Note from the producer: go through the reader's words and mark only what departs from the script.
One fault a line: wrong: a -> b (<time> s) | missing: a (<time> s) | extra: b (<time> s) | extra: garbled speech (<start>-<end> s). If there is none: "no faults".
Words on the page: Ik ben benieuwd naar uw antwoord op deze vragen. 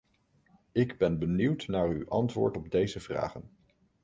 no faults